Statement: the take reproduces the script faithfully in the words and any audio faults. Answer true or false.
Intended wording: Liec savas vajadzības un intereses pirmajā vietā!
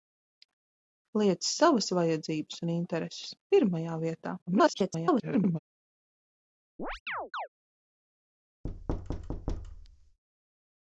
false